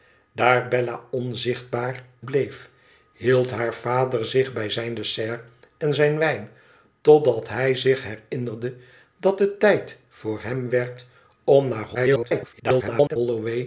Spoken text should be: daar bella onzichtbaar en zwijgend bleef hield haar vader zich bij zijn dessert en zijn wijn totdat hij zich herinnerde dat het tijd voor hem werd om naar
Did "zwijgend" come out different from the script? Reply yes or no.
yes